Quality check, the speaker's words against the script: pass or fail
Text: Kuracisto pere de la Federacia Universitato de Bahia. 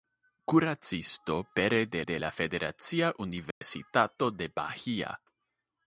fail